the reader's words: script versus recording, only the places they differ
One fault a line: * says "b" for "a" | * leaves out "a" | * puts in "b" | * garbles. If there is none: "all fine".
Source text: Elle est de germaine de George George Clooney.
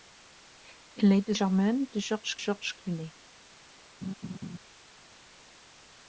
all fine